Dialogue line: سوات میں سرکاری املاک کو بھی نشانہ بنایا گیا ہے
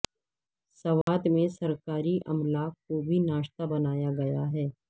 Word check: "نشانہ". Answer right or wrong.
right